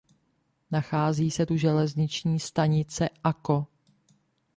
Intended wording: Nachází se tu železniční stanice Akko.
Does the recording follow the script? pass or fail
pass